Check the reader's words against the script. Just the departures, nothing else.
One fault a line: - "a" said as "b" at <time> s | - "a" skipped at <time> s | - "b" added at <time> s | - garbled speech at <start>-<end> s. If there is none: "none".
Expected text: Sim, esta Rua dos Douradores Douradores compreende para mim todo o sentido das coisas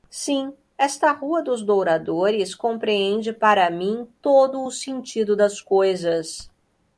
- "Douradores" skipped at 2.5 s